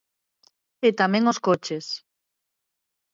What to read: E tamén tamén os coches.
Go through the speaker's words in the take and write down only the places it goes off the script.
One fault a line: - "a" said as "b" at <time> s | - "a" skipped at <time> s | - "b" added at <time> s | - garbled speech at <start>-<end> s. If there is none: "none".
- "tamén" skipped at 1.2 s